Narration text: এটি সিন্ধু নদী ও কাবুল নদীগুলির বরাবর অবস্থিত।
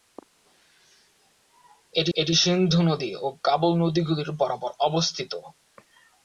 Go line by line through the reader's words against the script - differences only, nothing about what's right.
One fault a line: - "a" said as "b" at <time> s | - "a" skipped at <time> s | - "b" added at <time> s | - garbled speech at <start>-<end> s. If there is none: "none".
- "এটি" added at 2.1 s